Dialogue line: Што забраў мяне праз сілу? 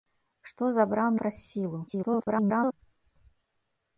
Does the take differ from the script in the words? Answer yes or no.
yes